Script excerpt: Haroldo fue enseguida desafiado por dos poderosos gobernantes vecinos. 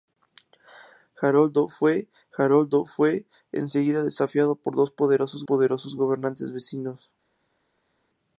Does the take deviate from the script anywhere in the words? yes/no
yes